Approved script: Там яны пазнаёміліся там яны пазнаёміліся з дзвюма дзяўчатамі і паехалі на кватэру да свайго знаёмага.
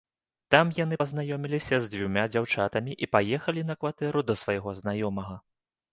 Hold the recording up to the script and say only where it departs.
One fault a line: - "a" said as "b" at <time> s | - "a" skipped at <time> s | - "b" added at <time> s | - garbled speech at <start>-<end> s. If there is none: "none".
- "там яны пазнаёміліся" skipped at 1.8 s